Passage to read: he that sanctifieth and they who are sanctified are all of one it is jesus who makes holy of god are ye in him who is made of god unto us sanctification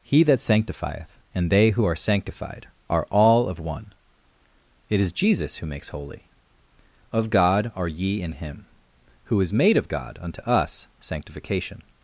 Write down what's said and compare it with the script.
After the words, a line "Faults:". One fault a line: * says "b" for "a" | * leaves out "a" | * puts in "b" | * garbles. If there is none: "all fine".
he that sanctifieth and they who are sanctified are all of one it is jesus who makes holy of god are ye in him who is made of god unto us sanctification
Faults:
all fine